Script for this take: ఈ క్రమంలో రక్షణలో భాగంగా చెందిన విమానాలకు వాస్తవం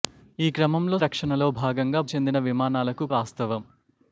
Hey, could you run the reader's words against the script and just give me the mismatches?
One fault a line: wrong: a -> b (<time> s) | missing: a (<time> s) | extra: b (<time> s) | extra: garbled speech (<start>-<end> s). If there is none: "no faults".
no faults